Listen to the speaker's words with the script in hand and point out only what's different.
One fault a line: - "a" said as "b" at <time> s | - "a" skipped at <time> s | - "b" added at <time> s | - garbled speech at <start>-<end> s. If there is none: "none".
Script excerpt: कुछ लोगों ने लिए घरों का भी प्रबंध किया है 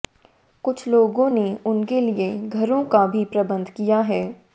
- "उनके" added at 1.7 s